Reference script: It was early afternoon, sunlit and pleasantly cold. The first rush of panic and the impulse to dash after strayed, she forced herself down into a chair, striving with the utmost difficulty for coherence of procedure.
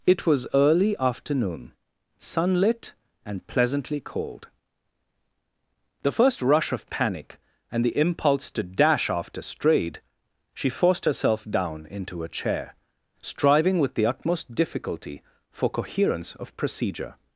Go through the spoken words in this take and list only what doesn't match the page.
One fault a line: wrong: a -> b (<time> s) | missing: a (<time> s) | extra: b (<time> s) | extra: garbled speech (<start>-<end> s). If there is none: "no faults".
no faults